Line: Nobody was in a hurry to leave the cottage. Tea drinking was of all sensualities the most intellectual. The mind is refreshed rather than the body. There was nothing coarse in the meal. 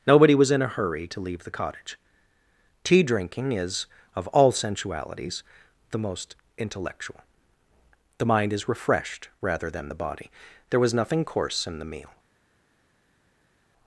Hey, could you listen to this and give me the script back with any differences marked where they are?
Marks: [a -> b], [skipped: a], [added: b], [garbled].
Nobody was in a hurry to leave the cottage. Tea drinking [was -> is] of all sensualities the most intellectual. The mind is refreshed rather than the body. There was nothing coarse in the meal.